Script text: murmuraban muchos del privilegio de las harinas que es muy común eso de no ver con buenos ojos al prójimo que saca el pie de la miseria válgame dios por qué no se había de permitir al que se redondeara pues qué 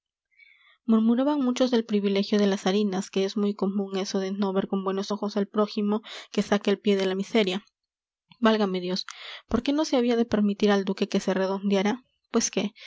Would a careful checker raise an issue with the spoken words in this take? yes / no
yes